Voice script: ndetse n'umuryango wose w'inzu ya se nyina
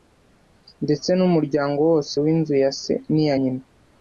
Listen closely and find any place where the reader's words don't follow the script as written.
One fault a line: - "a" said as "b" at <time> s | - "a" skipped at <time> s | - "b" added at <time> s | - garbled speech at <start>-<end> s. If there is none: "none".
- "n'iya" added at 3.1 s